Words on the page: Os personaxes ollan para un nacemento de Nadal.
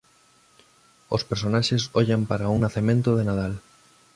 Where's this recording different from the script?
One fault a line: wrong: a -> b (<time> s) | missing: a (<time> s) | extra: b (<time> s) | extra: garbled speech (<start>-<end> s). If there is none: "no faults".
no faults